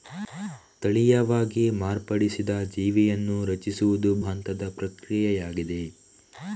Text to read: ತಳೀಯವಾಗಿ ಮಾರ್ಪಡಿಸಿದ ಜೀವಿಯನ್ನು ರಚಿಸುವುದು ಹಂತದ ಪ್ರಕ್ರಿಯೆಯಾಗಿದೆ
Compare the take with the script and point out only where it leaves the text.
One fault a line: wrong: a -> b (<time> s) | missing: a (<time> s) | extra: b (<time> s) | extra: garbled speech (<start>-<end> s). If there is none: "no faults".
no faults